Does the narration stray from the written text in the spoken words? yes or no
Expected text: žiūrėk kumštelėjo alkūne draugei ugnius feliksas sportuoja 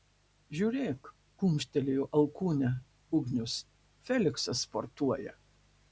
yes